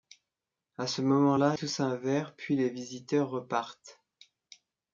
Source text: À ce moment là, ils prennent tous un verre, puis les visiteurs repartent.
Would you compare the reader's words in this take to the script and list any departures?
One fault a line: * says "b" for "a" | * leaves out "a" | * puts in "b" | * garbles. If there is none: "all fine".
* leaves out "ils prennent"